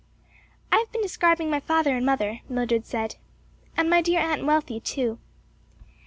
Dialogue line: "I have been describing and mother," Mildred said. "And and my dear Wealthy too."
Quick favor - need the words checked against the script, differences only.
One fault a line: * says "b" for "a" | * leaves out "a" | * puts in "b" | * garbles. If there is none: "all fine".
* puts in "my father"
* leaves out "and"
* puts in "Aunt"